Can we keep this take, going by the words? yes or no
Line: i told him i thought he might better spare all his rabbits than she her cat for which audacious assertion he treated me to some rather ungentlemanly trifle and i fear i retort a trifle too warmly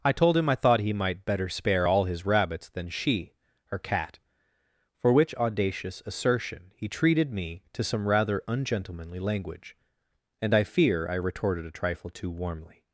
no